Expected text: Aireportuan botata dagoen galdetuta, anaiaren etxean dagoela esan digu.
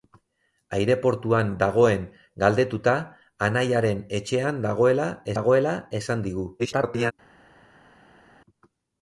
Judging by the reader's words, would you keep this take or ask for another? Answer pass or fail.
fail